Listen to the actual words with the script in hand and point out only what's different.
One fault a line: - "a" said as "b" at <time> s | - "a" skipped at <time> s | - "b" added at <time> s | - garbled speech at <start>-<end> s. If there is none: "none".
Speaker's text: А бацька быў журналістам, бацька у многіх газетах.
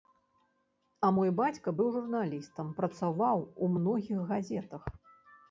- "мой" added at 1.1 s
- "бацька" said as "працаваў" at 2.8 s